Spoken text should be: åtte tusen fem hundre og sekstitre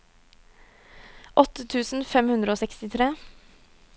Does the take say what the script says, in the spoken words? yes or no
yes